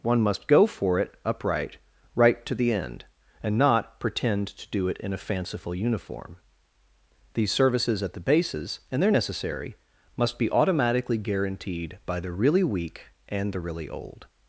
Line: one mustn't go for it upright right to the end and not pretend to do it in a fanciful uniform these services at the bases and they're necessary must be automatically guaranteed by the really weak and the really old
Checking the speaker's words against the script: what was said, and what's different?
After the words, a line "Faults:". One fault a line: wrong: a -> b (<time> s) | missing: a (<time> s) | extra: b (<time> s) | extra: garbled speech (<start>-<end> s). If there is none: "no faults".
one must go for it upright right to the end and not pretend to do it in a fanciful uniform these services at the bases and they're necessary must be automatically guaranteed by the really weak and the really old
Faults:
wrong: mustn't -> must (0.2 s)